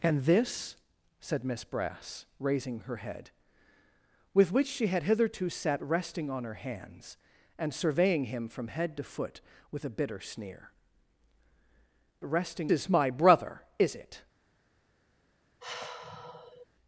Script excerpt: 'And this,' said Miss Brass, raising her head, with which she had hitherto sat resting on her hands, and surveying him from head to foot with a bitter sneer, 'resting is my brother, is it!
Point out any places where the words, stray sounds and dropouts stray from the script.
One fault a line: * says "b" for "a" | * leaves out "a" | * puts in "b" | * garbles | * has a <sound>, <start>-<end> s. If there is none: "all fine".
* has a sigh, 15.6-16.7 s